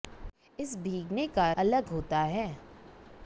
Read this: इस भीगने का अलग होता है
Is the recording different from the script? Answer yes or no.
no